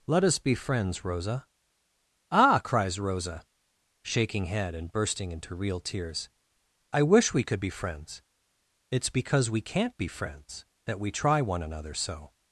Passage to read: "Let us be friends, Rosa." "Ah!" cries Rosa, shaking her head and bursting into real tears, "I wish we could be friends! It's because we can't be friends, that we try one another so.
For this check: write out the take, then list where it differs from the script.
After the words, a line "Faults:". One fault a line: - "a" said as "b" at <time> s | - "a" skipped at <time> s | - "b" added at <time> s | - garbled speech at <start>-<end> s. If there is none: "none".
"Let us be friends, Rosa." "Ah!" cries Rosa, shaking head and bursting into real tears, "I wish we could be friends! It's because we can't be friends, that we try one another so.
Faults:
- "her" skipped at 4.4 s